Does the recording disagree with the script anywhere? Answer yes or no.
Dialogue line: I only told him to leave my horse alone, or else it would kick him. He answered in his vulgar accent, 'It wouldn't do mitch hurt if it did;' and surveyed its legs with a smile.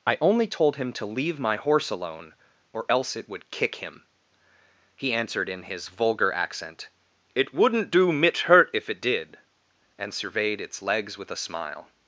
no